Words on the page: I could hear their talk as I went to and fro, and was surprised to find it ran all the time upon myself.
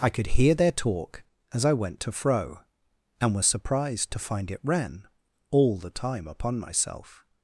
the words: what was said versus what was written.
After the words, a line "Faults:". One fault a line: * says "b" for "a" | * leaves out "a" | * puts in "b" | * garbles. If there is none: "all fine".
I could hear their talk as I went to fro, and was surprised to find it ran all the time upon myself.
Faults:
* leaves out "and"